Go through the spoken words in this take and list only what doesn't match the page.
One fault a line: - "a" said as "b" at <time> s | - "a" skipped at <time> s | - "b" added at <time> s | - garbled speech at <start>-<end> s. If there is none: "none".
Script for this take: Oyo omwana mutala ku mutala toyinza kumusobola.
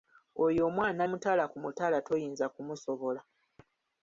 none